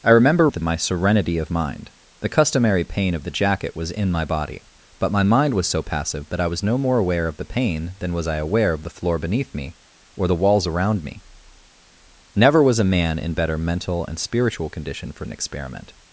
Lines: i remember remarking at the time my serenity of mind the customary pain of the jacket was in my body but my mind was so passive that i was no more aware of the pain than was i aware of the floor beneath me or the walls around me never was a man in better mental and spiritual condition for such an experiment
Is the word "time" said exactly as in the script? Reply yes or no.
no